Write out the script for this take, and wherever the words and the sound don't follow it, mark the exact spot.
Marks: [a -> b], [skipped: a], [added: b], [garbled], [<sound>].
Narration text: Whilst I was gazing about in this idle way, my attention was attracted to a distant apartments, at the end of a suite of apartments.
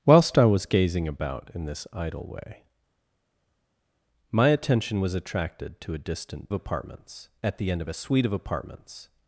Whilst I was gazing about in this idle way, my attention was attracted to a distant apartments, at the end of a suite of apartments.